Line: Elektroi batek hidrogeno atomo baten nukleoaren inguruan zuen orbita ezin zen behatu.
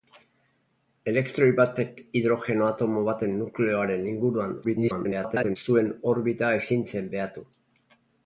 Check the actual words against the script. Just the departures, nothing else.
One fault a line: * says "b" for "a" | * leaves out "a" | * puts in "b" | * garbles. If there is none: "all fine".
* garbles